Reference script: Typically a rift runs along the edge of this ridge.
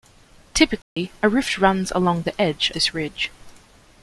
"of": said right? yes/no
no